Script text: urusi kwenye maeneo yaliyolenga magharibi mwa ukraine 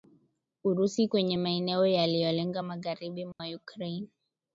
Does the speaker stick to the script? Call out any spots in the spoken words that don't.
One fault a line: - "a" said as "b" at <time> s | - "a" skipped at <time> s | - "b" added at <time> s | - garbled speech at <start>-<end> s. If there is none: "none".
none